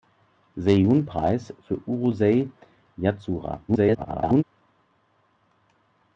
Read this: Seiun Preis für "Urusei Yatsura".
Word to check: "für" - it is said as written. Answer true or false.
true